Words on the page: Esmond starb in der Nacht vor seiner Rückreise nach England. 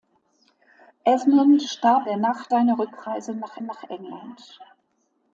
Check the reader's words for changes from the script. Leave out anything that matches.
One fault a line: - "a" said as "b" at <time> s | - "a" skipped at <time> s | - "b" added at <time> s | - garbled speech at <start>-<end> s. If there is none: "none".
- "in" skipped at 2.1 s
- "vor" skipped at 2.5 s
- "nach" added at 3.6 s